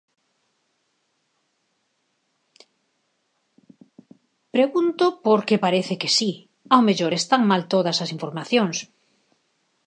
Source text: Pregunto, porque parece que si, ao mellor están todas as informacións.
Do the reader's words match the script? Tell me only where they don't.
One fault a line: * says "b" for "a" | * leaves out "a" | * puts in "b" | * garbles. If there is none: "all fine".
* puts in "mal"